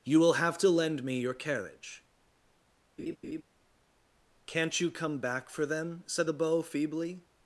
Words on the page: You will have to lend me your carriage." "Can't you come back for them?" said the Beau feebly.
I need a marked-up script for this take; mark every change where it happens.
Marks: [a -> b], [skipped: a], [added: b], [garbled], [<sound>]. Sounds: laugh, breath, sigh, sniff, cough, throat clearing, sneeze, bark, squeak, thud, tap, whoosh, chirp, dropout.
You will have to lend me your carriage." [laugh] "Can't you come back for them?" said the Beau feebly.